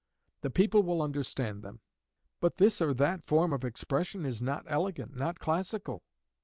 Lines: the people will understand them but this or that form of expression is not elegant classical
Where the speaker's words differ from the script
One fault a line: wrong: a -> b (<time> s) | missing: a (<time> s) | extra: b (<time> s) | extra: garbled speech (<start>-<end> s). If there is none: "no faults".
extra: not (5.2 s)